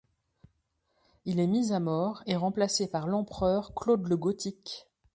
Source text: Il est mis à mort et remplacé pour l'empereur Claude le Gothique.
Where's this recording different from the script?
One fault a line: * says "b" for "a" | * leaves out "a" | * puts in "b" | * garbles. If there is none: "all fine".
* says "par" for "pour"